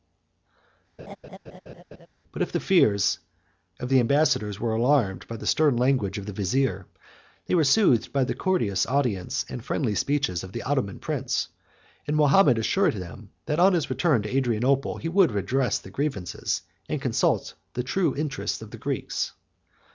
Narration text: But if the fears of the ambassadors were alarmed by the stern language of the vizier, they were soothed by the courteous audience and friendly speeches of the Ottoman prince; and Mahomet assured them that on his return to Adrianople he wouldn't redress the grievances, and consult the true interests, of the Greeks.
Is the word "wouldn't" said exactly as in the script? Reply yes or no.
no